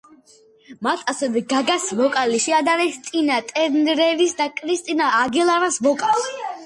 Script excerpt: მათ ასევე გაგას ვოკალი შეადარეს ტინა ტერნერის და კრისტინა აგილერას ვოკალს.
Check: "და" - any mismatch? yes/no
no